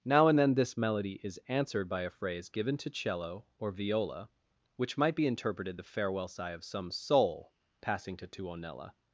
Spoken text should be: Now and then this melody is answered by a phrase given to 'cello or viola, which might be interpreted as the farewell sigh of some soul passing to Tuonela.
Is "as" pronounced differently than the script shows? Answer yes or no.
yes